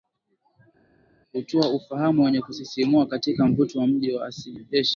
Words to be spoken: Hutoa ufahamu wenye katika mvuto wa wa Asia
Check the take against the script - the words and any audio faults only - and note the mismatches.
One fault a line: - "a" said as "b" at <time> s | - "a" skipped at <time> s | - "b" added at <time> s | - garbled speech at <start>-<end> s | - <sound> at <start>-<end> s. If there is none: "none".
- "kusisimua" added at 2.4 s
- "mji" added at 3.9 s